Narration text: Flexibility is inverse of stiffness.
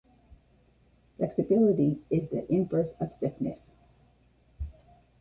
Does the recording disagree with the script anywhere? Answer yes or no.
yes